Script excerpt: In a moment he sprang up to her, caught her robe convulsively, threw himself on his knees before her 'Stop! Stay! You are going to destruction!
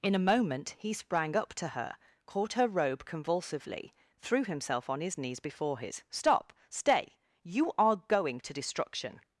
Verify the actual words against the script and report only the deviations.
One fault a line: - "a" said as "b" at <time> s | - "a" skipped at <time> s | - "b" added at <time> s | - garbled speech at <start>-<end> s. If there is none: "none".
- "her" said as "his" at 5.8 s